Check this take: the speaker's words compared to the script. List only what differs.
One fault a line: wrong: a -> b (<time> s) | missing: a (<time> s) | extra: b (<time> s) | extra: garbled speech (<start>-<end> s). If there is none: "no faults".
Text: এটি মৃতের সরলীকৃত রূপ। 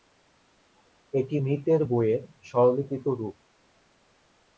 extra: বইয়ের (1.8 s)